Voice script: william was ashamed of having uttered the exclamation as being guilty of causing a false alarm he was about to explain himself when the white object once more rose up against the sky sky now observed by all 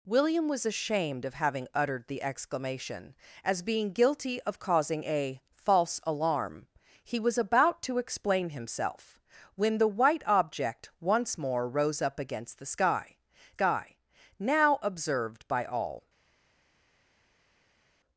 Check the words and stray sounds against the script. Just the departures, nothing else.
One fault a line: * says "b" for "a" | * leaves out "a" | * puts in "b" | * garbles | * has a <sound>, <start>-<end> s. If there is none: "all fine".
all fine